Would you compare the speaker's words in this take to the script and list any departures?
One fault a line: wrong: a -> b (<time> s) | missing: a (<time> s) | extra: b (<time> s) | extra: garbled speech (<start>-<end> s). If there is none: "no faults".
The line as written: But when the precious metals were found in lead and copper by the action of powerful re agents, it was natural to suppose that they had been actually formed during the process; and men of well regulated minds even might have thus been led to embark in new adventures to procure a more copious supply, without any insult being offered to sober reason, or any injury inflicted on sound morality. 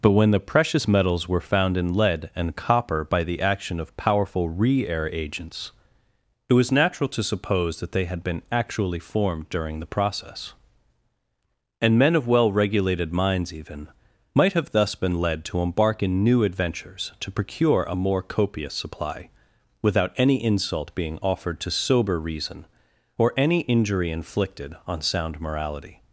extra: air (4.9 s)